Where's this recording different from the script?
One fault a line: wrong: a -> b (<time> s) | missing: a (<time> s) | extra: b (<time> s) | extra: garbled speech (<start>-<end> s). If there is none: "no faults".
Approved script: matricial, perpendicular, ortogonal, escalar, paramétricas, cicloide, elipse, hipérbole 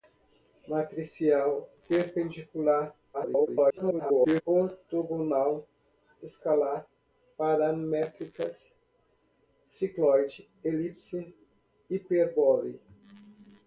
extra: garbled speech (3.1-4.4 s)